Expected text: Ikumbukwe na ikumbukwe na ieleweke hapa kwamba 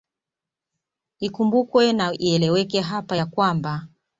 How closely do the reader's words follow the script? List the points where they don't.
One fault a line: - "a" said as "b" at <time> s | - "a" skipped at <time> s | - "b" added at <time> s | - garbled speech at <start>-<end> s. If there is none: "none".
- "ikumbukwe na" skipped at 2.1 s
- "ya" added at 3.1 s